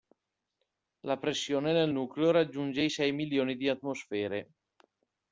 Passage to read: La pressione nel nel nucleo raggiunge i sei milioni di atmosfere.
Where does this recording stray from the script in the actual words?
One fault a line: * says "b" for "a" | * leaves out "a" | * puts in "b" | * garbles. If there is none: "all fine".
* leaves out "nel"